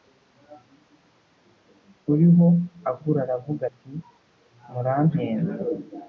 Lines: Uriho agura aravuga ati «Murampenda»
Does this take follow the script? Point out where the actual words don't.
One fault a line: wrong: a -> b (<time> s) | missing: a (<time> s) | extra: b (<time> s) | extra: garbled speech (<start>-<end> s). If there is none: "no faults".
no faults